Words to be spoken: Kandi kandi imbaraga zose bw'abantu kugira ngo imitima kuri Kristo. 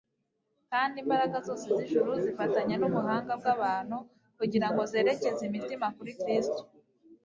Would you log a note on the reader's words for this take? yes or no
yes